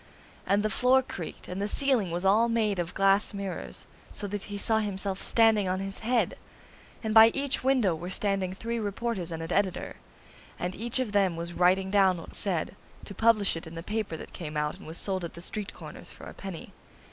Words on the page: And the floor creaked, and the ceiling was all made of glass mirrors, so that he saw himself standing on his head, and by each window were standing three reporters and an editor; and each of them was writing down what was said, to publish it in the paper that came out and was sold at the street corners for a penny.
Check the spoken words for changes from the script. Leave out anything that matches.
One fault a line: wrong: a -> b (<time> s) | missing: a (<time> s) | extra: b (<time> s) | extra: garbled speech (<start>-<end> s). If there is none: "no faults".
missing: was (12.3 s)